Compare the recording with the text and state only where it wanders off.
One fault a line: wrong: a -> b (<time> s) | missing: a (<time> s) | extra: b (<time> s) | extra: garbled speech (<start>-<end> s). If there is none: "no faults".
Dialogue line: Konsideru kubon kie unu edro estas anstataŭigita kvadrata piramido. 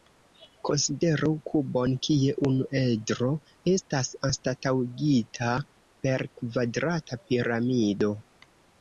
extra: per (6.1 s)